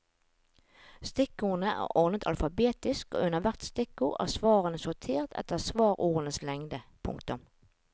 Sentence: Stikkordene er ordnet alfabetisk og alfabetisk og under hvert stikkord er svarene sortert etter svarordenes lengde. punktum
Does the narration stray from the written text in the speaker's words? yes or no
yes